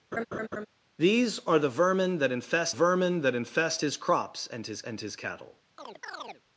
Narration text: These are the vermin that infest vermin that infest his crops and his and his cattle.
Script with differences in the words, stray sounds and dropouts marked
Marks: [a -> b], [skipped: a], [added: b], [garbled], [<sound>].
[laugh] These are the vermin that infest vermin that infest his crops and his and his cattle. [chirp]